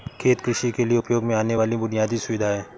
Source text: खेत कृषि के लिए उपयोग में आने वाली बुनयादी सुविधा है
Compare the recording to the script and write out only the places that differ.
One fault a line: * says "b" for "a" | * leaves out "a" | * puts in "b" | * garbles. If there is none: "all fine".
all fine